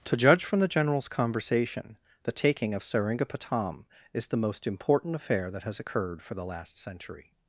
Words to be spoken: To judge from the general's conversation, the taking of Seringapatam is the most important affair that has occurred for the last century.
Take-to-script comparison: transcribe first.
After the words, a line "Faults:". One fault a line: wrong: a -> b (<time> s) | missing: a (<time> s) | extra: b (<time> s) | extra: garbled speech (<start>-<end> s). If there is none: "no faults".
To judge from the general's conversation, the taking of Seringapatam is the most important affair that has occurred for the last century.
Faults:
no faults